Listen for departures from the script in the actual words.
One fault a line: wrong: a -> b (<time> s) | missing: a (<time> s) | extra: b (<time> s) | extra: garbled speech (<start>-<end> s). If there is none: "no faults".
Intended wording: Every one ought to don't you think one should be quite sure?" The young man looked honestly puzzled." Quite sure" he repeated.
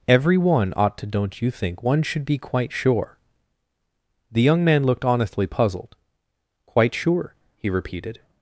no faults